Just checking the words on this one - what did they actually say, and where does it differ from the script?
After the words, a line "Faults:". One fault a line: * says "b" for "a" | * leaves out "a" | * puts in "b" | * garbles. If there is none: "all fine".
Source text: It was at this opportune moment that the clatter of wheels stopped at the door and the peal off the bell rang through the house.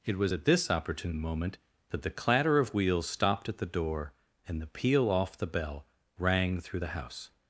It was at this opportune moment that the clatter of wheels stopped at the door and the peal off the bell rang through the house.
Faults:
all fine